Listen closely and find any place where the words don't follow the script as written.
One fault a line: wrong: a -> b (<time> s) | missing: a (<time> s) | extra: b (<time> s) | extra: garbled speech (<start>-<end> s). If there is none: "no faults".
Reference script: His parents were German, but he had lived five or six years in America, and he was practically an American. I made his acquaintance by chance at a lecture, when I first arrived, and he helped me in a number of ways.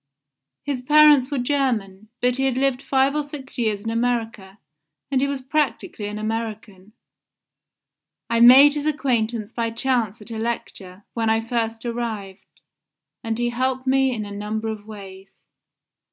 no faults